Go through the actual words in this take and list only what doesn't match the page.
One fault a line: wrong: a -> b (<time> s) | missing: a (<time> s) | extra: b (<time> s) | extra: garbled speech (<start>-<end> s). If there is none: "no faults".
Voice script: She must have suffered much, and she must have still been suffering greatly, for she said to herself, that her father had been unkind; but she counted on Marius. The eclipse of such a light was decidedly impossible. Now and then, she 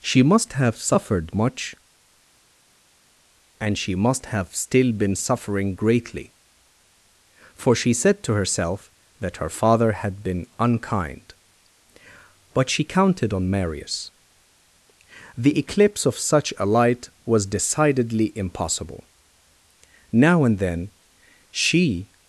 no faults